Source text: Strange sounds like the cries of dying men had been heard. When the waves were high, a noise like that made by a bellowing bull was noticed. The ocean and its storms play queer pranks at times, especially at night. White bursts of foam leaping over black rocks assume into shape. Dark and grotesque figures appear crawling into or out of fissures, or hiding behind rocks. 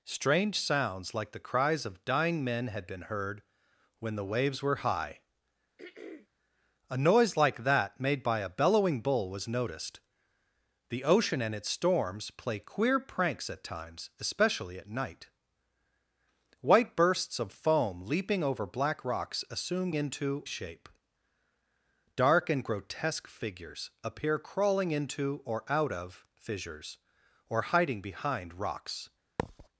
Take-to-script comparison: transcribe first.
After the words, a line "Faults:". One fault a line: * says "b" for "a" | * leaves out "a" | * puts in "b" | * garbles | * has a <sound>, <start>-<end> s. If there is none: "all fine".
Strange sounds like the cries of dying men had been heard. When the waves were high, a noise like that made by a bellowing bull was noticed. The ocean and its storms play queer pranks at times, especially at night. White bursts of foam leaping over black rocks assume into shape. Dark and grotesque figures appear crawling into or out of fissures, or hiding behind rocks.
Faults:
* has a throat clearing, 5.8-6.3 s
* has a thud, 29.4-29.7 s